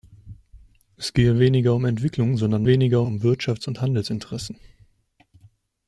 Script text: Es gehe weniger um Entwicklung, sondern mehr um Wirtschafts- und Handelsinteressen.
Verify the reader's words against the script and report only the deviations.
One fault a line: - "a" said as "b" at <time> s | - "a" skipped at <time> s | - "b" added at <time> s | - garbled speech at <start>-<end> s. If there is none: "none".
- "mehr" said as "weniger" at 2.6 s